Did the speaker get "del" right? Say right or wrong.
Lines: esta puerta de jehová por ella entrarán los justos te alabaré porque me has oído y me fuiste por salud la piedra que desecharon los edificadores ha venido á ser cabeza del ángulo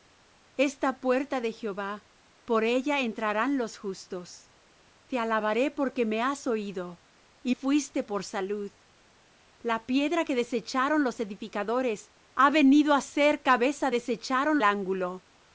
wrong